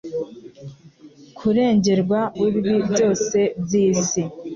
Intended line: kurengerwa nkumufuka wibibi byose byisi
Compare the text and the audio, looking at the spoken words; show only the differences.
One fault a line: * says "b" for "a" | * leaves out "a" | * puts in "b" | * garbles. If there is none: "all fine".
* leaves out "nkumufuka"